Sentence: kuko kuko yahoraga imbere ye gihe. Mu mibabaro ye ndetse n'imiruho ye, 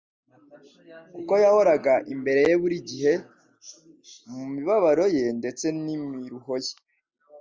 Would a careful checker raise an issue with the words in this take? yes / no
yes